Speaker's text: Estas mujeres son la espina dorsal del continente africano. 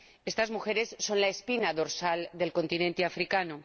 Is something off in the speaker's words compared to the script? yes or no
no